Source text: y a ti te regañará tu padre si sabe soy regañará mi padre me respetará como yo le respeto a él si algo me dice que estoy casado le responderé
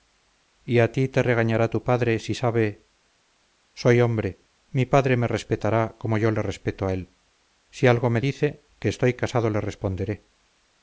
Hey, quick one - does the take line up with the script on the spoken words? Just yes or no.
no